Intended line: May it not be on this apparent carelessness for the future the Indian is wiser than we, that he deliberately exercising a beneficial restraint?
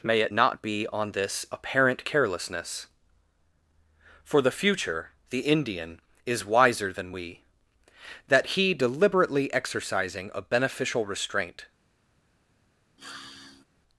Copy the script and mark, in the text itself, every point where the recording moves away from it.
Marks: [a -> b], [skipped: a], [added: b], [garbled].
May it not be on this apparent carelessness for the future the Indian is wiser than we, that he deliberately exercising a beneficial restraint?